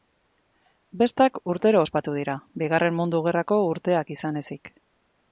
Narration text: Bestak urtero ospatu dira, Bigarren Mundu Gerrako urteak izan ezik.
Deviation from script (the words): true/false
false